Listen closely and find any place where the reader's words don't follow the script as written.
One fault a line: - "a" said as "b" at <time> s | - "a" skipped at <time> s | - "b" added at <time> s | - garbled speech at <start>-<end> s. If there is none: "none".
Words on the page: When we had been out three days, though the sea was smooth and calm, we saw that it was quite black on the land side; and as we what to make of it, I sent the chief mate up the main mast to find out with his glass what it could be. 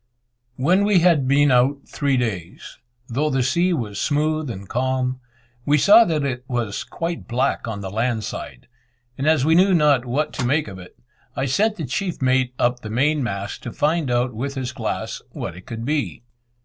- "knew not" added at 9.5 s